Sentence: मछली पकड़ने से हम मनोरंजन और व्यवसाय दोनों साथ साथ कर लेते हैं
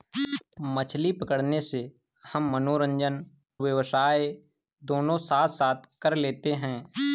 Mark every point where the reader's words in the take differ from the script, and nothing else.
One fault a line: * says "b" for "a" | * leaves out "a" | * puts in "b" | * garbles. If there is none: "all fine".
* leaves out "और"